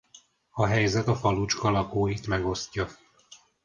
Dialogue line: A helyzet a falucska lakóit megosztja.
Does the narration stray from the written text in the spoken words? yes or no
no